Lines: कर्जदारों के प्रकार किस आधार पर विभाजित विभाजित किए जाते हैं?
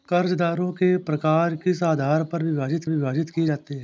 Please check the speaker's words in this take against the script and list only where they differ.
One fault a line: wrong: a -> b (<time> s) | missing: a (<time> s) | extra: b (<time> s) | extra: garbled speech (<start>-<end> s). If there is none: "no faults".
no faults